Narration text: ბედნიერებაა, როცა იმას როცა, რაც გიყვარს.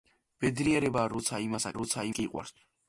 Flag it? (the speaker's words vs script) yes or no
no